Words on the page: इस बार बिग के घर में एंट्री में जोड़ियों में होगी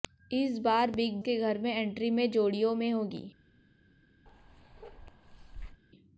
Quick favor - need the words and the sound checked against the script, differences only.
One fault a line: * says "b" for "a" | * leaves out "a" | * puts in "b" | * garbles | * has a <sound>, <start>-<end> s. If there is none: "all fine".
* has a bark, 4.3-5.8 s